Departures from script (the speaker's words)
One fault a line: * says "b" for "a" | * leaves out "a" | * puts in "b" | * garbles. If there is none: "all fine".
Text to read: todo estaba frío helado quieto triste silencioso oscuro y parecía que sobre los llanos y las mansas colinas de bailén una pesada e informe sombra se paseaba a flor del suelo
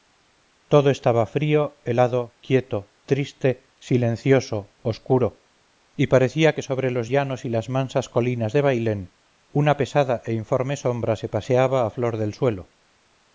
all fine